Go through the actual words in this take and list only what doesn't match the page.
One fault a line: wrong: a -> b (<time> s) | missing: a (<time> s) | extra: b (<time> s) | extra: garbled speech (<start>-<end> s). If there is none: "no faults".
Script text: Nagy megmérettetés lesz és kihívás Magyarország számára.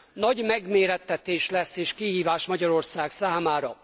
no faults